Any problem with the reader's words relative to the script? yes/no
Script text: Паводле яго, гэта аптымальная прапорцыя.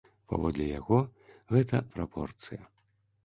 yes